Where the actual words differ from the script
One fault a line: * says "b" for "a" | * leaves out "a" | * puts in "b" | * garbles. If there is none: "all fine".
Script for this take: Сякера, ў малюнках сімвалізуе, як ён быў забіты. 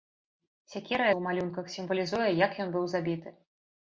all fine